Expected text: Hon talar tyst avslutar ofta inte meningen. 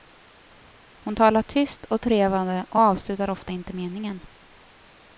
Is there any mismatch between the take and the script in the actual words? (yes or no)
yes